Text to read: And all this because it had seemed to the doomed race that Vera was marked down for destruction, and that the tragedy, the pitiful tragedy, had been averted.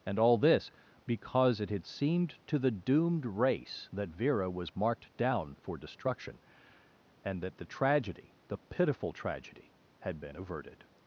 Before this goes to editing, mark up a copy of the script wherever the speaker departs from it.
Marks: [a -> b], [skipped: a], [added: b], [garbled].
And all this because it had seemed to the doomed race that Vera was marked down for destruction, and that the tragedy, the pitiful tragedy, had been averted.